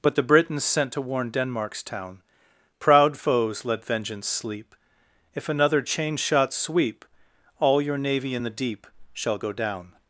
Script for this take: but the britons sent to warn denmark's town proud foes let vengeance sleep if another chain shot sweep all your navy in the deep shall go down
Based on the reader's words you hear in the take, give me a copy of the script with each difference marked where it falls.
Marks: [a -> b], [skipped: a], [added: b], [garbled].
but the britons sent to warn denmark's town proud foes let vengeance sleep if another chain shot sweep all your navy in the deep shall go down